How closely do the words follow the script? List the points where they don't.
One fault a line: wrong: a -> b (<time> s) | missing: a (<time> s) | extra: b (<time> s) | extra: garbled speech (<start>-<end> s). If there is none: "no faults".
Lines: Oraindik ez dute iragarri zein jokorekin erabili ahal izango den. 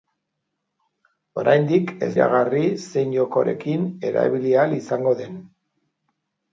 missing: dute (2.1 s)